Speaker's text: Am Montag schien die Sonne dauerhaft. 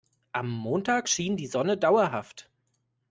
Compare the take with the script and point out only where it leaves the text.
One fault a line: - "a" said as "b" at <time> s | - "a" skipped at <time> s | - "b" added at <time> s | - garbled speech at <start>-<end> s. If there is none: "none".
none